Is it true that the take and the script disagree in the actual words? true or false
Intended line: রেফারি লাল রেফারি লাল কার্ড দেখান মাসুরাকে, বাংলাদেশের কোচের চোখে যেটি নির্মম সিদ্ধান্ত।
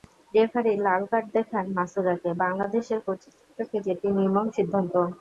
true